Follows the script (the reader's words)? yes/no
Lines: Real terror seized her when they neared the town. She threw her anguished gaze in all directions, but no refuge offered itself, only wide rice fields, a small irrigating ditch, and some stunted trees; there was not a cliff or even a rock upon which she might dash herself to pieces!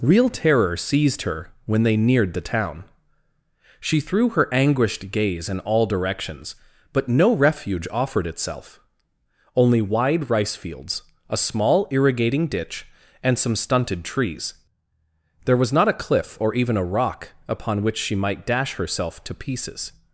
yes